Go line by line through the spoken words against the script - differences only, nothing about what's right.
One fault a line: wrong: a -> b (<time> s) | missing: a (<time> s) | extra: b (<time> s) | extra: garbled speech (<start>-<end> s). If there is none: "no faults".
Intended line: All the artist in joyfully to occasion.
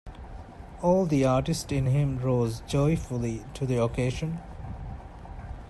extra: him rose (1.9 s)
extra: the (3.7 s)